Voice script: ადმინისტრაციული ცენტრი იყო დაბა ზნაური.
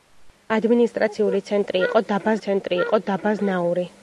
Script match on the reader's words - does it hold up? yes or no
no